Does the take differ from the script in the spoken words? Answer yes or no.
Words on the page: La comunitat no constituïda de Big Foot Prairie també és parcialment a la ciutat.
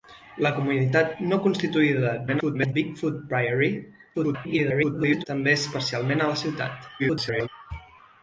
yes